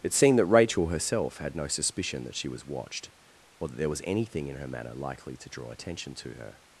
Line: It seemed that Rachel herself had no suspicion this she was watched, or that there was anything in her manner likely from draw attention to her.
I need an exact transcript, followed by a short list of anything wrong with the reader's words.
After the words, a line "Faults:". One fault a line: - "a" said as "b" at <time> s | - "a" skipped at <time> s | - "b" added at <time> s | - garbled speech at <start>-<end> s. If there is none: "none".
It seemed that Rachel herself had no suspicion that she was watched, or that there was anything in her manner likely to draw attention to her.
Faults:
- "this" said as "that" at 2.2 s
- "from" said as "to" at 5.4 s